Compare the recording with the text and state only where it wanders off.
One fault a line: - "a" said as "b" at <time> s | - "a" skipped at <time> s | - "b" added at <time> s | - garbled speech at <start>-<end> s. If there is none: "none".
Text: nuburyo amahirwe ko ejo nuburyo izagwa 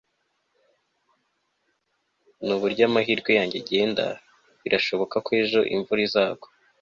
- "yanjye agenda birashoboka" added at 3.4 s
- "nuburyo" said as "imvura" at 5.7 s